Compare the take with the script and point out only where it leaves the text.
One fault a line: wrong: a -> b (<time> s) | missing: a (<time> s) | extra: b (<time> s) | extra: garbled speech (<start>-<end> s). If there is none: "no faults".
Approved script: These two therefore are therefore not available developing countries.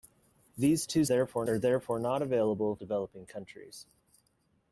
no faults